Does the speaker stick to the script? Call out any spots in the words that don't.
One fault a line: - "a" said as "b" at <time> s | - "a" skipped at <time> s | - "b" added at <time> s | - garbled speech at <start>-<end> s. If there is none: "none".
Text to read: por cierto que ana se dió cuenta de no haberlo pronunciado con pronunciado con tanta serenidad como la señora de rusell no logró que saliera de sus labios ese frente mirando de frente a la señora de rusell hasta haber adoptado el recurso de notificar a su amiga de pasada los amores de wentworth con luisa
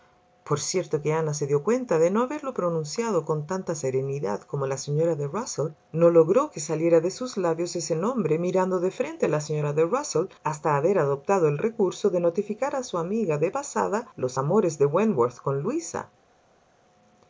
- "pronunciado con" skipped at 3.5 s
- "frente" said as "nombre" at 8.0 s